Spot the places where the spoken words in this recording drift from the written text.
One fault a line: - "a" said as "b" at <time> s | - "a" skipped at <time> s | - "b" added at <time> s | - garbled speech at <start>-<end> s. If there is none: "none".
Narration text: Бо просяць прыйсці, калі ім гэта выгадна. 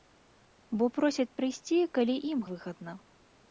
- "гэта" skipped at 2.4 s